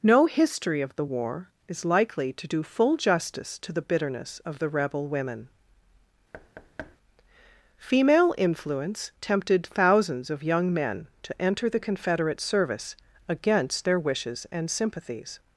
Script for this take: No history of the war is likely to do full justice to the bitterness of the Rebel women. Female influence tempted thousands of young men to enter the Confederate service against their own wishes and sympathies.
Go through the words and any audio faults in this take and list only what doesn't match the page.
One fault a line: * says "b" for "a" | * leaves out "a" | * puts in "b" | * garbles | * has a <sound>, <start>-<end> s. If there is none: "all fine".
* has a thud, 6.3-7.0 s
* leaves out "own"